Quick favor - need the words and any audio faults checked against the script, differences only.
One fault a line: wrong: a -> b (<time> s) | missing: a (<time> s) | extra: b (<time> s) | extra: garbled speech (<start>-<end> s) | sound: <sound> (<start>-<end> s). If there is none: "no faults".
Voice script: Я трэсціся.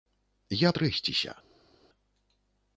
no faults